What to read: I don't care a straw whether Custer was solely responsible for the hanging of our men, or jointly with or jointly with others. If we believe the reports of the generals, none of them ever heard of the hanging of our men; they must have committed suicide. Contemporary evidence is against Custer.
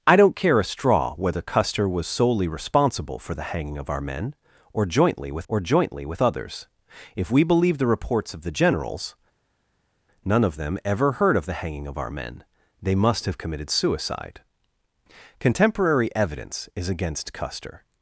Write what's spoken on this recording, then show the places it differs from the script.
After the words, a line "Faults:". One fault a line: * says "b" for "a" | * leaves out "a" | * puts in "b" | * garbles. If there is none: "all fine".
I don't care a straw whether Custer was solely responsible for the hanging of our men, or jointly with or jointly with others. If we believe the reports of the generals, none of them ever heard of the hanging of our men; they must have committed suicide. Contemporary evidence is against Custer.
Faults:
all fine